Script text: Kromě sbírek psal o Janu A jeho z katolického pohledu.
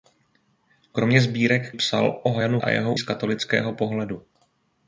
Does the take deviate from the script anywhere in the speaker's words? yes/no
no